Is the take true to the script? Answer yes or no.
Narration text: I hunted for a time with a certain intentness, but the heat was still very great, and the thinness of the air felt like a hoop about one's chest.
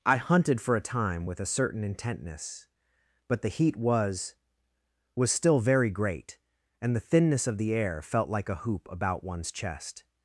no